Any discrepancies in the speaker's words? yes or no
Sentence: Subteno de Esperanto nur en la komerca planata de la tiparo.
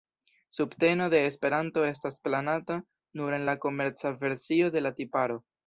yes